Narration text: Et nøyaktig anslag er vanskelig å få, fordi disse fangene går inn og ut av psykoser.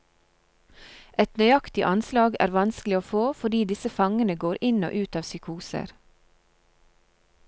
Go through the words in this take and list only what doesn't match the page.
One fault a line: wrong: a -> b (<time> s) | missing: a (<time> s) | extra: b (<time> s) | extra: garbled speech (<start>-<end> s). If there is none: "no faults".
no faults